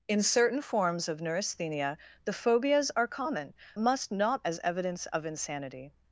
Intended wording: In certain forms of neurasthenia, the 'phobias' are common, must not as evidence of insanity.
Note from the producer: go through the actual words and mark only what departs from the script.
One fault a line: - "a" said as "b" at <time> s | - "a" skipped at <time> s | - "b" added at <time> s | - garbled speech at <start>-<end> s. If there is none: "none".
none